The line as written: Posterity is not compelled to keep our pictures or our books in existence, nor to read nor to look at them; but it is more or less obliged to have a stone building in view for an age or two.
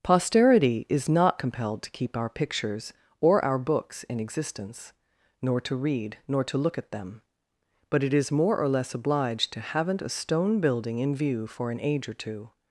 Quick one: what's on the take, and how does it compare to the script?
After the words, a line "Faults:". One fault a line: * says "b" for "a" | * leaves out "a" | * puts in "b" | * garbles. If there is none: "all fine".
Posterity is not compelled to keep our pictures or our books in existence, nor to read nor to look at them; but it is more or less obliged to haven't a stone building in view for an age or two.
Faults:
* says "haven't" for "have"